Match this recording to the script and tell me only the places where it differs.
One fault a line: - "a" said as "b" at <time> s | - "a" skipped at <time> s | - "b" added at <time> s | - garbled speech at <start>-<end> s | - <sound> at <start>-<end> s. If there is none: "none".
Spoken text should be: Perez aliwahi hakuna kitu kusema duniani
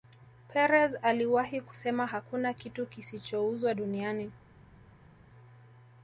- "kusema" added at 1.6 s
- "kusema" said as "kisichouzwa" at 2.9 s